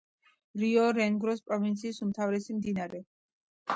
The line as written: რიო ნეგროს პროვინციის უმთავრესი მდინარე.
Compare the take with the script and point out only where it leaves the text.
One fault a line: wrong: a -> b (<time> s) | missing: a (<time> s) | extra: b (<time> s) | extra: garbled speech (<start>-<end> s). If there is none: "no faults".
no faults